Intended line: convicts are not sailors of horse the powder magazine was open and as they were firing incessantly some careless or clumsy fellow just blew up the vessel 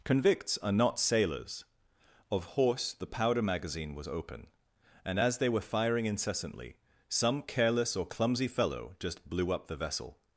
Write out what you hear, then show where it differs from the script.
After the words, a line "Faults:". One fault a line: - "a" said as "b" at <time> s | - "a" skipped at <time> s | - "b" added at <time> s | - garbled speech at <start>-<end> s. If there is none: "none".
convicts are not sailors of horse the powder magazine was open and as they were firing incessantly some careless or clumsy fellow just blew up the vessel
Faults:
none